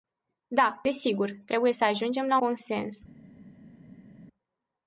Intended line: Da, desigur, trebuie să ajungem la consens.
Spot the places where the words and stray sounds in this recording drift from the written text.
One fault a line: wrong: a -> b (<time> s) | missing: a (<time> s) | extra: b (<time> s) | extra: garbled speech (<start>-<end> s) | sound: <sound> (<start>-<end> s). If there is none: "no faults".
no faults